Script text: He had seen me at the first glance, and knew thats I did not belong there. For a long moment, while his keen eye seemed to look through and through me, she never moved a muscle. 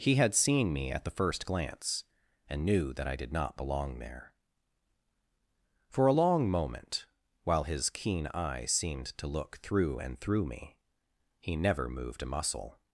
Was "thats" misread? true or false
true